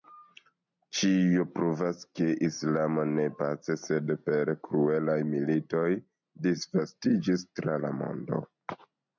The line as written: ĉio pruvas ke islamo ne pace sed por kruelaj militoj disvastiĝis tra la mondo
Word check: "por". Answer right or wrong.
wrong